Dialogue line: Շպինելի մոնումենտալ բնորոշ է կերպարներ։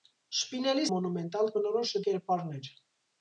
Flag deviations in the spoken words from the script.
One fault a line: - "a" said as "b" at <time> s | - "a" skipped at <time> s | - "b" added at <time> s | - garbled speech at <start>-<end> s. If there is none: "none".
none